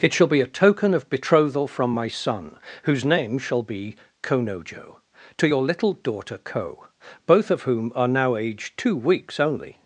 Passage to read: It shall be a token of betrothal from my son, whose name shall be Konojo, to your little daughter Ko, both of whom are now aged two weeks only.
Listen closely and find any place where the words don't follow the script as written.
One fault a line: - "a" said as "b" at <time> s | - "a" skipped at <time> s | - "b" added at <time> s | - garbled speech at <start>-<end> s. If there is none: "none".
none